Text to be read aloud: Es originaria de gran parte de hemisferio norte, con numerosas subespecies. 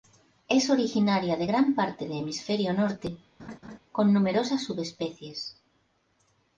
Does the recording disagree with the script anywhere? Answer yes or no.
no